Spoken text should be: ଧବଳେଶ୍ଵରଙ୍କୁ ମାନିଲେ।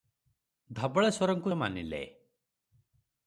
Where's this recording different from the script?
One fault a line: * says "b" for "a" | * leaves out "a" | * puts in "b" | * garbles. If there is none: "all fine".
all fine